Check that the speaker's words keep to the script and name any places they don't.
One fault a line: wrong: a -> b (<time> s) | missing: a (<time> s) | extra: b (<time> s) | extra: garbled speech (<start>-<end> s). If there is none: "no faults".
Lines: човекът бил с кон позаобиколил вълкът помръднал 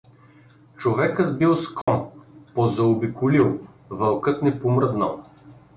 extra: не (4.4 s)